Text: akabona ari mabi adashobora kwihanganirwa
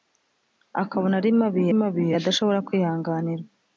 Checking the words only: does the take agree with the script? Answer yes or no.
no